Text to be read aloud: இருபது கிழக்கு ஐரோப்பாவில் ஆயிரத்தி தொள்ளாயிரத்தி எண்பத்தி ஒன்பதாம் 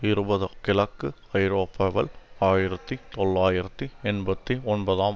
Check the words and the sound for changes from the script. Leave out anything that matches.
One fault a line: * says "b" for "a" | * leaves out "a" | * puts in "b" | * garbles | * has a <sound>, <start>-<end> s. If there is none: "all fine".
all fine